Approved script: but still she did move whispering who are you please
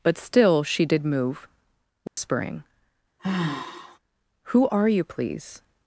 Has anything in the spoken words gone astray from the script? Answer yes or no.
no